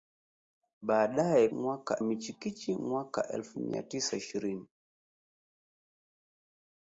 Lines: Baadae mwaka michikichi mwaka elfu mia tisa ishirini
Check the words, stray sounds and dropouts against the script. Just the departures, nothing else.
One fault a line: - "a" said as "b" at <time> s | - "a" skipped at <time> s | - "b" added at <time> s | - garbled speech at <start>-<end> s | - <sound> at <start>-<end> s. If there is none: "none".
none